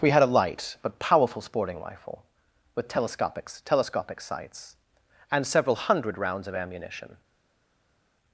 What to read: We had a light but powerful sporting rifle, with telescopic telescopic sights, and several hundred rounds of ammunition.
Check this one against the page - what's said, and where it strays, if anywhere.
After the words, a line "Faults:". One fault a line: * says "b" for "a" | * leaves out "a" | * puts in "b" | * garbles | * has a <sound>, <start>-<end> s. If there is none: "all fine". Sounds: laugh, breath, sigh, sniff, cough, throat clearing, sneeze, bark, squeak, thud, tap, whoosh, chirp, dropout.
We had a light but powerful sporting rifle, with telescopic telescopic sights, and several hundred rounds of ammunition.
Faults:
all fine